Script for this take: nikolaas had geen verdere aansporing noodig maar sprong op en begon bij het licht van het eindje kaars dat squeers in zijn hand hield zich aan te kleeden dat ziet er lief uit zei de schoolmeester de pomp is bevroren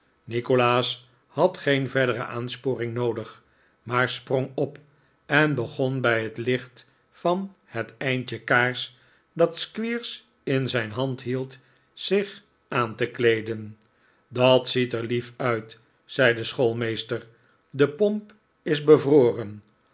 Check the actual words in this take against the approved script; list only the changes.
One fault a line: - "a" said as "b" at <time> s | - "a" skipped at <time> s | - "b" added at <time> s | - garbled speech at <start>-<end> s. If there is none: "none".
none